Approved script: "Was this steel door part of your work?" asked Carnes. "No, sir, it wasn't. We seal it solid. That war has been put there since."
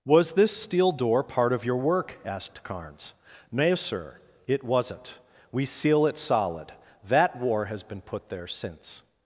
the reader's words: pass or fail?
pass